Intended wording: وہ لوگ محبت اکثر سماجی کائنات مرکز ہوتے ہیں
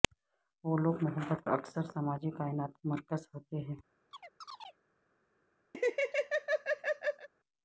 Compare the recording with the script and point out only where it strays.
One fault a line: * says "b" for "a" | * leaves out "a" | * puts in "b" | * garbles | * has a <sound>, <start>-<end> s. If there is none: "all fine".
* has a chirp, 4.1-4.8 s
* has a laugh, 5.7-7.3 s